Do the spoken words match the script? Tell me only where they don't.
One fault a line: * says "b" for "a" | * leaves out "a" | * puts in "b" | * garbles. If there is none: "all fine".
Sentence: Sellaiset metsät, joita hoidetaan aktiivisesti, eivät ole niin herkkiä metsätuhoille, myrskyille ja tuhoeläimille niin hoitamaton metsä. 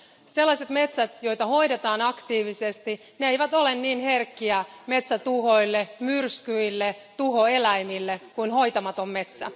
* says "kuin" for "niin"